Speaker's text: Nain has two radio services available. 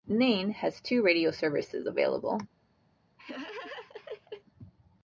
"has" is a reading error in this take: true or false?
false